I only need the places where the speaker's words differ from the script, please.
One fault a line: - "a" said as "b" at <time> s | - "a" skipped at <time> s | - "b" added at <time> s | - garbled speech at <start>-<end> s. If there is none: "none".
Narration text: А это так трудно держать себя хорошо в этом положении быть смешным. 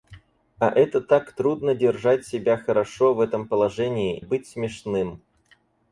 none